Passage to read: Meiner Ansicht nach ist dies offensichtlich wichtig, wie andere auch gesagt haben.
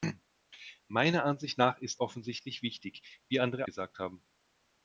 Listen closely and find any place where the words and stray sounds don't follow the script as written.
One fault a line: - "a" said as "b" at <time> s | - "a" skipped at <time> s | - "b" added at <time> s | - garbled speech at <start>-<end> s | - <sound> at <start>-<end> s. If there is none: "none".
- "dies" skipped at 2.0 s
- "auch" skipped at 3.7 s